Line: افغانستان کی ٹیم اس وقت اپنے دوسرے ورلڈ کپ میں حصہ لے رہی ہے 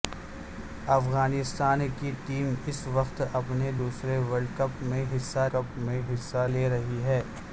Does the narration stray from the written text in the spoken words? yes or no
yes